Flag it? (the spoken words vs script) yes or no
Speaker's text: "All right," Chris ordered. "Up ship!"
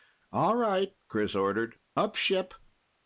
no